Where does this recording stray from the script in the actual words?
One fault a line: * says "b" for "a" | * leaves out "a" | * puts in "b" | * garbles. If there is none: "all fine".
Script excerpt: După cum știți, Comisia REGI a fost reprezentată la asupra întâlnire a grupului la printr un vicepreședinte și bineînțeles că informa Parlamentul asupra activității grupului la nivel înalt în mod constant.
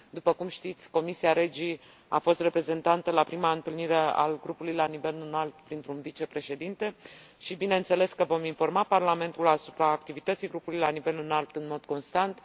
* says "prima" for "asupra"
* puts in "nivel înalt"
* puts in "vom"